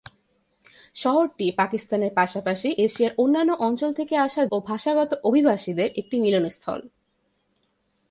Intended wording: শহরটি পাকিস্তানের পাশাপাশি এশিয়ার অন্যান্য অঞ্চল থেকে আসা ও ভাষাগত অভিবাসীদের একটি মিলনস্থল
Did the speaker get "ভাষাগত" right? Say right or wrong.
right